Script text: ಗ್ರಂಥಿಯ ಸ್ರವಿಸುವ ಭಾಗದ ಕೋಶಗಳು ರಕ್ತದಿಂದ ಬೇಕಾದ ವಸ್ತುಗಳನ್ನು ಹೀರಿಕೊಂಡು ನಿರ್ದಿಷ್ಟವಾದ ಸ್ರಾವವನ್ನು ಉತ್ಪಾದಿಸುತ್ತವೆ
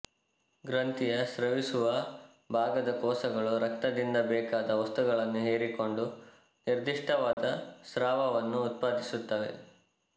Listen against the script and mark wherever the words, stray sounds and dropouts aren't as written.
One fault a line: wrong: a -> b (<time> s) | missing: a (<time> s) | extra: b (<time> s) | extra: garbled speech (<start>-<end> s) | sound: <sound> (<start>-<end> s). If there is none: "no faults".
sound: dropout (7.3-7.4 s)